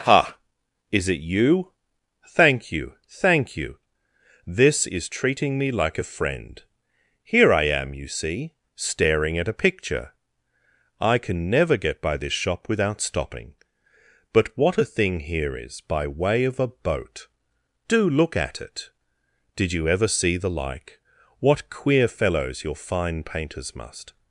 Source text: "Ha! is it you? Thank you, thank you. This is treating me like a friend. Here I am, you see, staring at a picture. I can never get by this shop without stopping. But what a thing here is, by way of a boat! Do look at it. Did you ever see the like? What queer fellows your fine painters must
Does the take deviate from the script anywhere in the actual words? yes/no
no